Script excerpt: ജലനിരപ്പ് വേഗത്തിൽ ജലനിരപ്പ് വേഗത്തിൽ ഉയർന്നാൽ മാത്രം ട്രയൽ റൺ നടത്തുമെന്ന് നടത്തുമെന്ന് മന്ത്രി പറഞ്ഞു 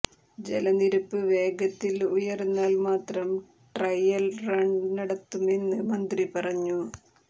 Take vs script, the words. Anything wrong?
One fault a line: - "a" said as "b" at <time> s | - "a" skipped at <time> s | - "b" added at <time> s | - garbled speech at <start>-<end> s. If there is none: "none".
- "ജലനിരപ്പ് വേഗത്തിൽ" skipped at 1.9 s
- "നടത്തുമെന്ന്" skipped at 5.8 s